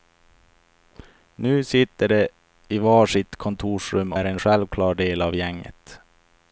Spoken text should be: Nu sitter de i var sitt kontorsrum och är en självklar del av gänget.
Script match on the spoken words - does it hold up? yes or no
no